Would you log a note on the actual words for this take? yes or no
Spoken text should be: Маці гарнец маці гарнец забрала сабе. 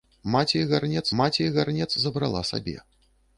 no